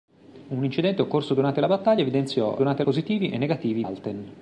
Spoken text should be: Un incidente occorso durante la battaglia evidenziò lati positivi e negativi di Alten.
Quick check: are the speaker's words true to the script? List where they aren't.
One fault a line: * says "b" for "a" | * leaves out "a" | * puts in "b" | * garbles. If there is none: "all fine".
* says "durante" for "lati"
* leaves out "di"